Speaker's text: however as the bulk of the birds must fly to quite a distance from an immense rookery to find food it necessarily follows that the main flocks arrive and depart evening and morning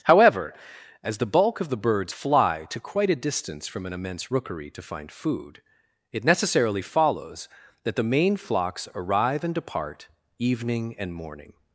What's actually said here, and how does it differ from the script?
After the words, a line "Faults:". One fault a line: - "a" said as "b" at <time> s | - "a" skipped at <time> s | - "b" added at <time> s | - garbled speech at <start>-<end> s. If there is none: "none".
however as the bulk of the birds fly to quite a distance from an immense rookery to find food it necessarily follows that the main flocks arrive and depart evening and morning
Faults:
- "must" skipped at 2.1 s